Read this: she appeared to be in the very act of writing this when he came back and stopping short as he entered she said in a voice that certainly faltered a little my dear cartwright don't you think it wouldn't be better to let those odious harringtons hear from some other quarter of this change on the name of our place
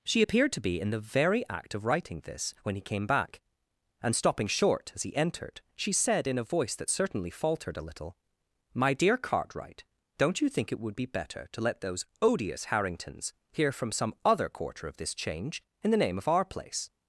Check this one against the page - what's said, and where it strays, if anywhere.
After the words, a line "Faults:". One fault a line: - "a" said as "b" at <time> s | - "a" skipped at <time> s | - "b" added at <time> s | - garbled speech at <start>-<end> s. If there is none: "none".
she appeared to be in the very act of writing this when he came back and stopping short as he entered she said in a voice that certainly faltered a little my dear cartwright don't you think it would be better to let those odious harringtons hear from some other quarter of this change in the name of our place
Faults:
- "wouldn't" said as "would" at 10.8 s
- "on" said as "in" at 15.8 s